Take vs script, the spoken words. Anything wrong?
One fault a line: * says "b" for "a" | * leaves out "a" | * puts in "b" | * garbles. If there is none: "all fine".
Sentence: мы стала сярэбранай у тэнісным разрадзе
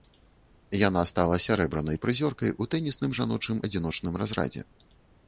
* says "яна" for "мы"
* puts in "прызёркай"
* puts in "жаночым адзіночным"